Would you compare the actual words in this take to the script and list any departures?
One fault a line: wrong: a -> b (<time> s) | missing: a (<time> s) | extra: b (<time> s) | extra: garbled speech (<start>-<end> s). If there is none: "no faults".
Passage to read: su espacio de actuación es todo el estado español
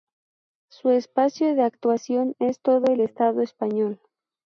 no faults